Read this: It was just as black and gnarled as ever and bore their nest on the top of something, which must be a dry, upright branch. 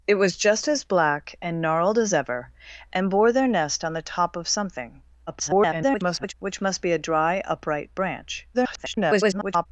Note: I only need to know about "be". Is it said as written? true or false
true